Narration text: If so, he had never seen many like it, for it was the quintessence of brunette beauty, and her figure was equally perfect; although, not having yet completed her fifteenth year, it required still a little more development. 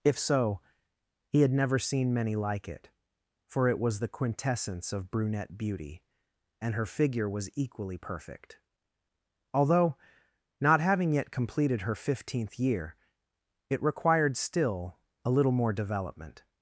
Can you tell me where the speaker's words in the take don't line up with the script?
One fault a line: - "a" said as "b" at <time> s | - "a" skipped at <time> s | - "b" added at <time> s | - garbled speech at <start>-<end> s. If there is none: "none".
none